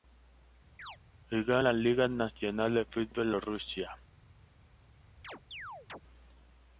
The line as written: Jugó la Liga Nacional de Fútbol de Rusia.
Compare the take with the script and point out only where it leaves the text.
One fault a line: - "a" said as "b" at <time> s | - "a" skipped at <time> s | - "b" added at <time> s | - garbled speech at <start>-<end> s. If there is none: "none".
none